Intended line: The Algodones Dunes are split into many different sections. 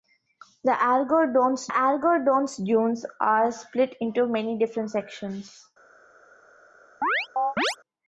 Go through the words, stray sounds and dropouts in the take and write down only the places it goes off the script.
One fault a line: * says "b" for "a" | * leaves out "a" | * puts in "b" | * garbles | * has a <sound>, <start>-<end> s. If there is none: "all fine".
* puts in "Algodones"
* has a chirp, 7.0-7.8 s